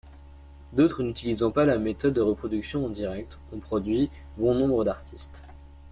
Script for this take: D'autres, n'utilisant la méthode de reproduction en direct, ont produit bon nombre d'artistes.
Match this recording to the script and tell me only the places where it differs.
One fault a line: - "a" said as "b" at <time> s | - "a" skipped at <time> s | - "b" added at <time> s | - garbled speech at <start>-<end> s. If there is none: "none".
- "pas" added at 1.5 s